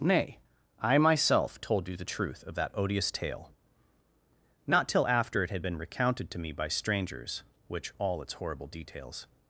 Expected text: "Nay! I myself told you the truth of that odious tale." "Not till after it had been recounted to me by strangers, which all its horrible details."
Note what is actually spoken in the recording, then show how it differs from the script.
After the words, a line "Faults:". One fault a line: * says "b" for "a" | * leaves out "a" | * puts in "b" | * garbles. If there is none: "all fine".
"Nay! I myself told you the truth of that odious tale." "Not till after it had been recounted to me by strangers, which all its horrible details."
Faults:
all fine